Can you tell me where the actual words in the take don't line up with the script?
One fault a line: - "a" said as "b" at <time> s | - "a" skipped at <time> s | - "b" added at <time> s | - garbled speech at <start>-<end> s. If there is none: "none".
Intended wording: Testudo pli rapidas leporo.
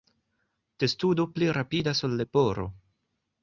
- "ol" added at 2.1 s